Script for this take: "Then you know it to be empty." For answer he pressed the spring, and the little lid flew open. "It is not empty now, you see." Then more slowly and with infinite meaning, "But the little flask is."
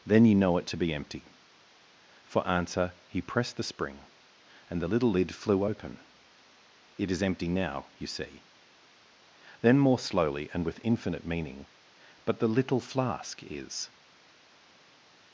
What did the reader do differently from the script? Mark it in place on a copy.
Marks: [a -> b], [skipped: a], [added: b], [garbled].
"Then you know it to be empty." For answer he pressed the spring, and the little lid flew open. "It is [skipped: not] empty now, you see." Then more slowly and with infinite meaning, "But the little flask is."